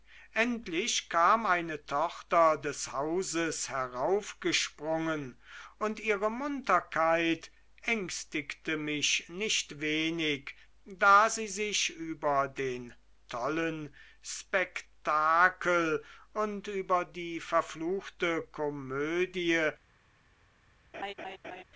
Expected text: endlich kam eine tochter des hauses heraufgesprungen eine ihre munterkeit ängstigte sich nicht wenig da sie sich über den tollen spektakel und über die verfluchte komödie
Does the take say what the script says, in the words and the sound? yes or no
no